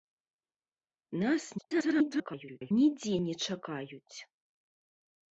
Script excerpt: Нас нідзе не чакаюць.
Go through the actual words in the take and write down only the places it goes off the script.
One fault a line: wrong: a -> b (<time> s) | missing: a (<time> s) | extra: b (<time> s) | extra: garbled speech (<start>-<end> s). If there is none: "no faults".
extra: garbled speech (1.6-2.7 s)